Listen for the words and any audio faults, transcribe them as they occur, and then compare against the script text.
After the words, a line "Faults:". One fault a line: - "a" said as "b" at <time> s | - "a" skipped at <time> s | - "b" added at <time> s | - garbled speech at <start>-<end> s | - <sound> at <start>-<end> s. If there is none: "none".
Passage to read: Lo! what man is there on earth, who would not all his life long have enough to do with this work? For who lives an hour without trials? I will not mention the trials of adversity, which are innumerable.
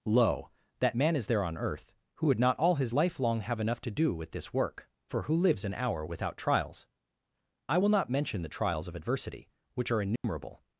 Lo! that man is there on earth, who would not all his life long have enough to do with this work? For who lives an hour without trials? I will not mention the trials of adversity, which are innumerable.
Faults:
- "what" said as "that" at 0.8 s
- dropout at 10.2-10.2 s